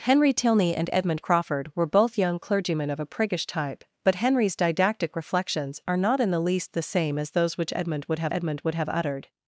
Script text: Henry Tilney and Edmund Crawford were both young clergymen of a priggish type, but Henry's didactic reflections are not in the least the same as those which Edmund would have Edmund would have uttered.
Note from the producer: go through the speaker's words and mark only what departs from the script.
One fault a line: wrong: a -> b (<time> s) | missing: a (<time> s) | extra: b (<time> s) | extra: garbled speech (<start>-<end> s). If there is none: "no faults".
no faults